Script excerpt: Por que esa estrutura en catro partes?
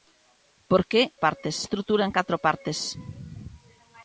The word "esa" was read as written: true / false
false